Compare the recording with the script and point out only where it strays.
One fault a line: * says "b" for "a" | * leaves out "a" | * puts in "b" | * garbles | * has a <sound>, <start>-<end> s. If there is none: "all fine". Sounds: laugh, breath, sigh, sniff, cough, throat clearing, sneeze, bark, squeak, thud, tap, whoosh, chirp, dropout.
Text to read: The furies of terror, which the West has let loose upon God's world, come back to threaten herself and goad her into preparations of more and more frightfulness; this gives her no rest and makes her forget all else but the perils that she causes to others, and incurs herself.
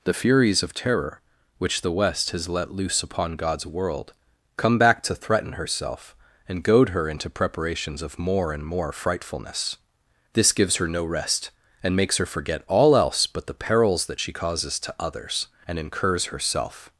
all fine